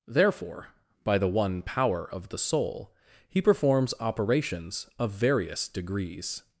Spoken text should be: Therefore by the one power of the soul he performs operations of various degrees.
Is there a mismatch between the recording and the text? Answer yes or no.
no